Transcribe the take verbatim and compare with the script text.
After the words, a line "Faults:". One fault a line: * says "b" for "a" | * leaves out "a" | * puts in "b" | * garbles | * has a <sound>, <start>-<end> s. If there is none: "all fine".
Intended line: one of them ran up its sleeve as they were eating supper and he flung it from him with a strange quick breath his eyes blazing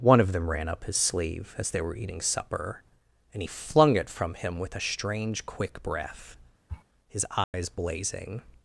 one of them ran up his sleeve as they were eating supper and he flung it from him with a strange quick breath his eyes blazing
Faults:
* says "his" for "its"
* has a sniff, 6.7-6.8 s
* has a dropout, 7.4-7.5 s